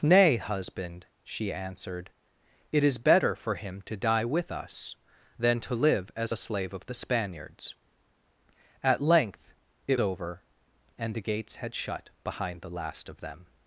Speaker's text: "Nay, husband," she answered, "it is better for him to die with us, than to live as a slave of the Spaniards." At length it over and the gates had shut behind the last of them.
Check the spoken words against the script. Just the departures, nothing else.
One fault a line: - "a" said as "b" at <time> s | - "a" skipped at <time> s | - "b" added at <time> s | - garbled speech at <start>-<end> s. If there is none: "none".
none